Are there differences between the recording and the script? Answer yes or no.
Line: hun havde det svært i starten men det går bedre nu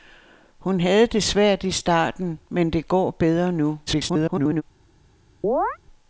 yes